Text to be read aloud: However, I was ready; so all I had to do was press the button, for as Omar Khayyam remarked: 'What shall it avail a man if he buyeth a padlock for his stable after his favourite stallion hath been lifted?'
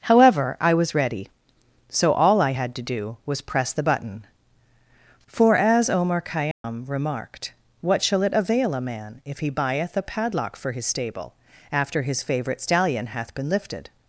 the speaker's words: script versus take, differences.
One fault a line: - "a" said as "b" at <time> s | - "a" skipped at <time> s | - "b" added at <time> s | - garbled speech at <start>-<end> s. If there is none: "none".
none